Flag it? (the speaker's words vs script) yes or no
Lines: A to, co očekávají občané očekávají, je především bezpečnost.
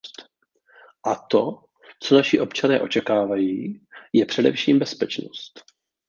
yes